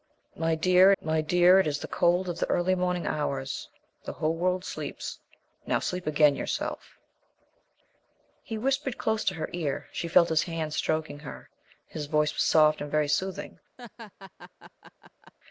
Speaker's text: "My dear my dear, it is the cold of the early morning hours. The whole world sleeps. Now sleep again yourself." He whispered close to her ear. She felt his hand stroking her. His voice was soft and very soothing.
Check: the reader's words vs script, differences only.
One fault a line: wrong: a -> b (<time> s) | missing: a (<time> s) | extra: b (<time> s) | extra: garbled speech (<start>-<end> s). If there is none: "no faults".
no faults